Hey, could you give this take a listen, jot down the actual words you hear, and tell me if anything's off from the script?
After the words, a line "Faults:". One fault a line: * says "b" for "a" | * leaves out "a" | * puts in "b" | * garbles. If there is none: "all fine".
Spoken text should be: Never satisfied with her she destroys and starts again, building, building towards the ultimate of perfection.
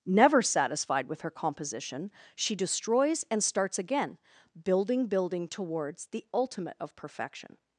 Never satisfied with her composition, she destroys and starts again, building, building towards the ultimate of perfection.
Faults:
* puts in "composition"